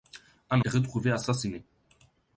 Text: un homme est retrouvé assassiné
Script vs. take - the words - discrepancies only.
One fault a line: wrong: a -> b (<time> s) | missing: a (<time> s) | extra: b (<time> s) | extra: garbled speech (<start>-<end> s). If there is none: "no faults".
missing: homme (0.6 s)